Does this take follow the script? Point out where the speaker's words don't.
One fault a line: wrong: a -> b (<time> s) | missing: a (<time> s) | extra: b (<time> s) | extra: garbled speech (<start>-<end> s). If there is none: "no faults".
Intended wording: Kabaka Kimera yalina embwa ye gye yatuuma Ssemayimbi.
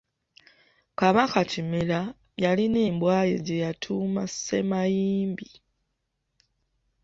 no faults